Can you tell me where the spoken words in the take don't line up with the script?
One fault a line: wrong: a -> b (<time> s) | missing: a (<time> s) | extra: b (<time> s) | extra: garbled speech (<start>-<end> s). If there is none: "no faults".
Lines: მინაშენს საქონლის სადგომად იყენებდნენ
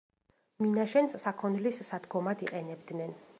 no faults